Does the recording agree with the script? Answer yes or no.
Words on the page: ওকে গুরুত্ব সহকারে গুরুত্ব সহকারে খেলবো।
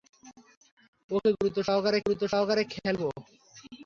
yes